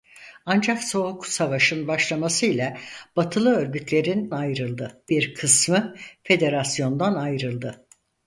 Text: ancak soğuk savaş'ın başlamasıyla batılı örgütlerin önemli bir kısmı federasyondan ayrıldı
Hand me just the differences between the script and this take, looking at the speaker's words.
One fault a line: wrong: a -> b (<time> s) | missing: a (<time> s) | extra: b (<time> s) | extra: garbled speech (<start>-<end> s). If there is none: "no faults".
wrong: önemli -> ayrıldı (4.3 s)